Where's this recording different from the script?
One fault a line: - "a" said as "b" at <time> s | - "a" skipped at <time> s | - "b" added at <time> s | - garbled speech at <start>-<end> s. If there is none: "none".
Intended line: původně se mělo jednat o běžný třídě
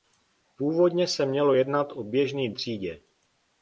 none